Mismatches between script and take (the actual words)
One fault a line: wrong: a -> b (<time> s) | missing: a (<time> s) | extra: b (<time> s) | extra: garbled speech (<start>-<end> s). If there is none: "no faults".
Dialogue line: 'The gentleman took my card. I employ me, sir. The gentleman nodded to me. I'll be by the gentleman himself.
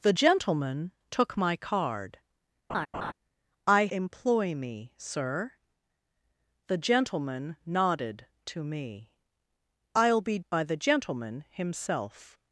no faults